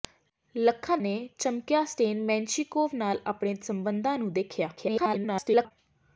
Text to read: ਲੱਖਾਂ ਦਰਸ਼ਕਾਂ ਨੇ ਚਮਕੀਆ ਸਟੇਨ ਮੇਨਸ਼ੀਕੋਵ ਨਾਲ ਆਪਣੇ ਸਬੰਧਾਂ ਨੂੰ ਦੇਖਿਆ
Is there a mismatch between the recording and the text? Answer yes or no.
yes